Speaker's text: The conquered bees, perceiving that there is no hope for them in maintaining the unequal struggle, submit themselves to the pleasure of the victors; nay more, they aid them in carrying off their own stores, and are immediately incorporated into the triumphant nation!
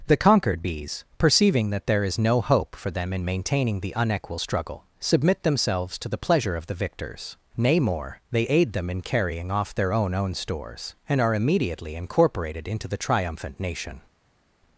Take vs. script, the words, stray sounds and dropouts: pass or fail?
fail